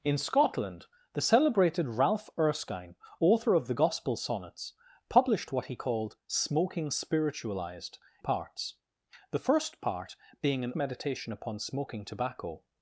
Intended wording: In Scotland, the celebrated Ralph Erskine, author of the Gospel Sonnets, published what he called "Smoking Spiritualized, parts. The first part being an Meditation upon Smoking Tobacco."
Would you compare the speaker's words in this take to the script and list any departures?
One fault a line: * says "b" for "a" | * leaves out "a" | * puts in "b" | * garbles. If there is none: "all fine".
all fine